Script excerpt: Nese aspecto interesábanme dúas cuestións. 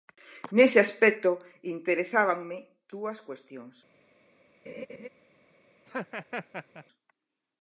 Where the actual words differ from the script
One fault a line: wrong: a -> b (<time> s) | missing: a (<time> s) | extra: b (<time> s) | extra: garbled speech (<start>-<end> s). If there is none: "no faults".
no faults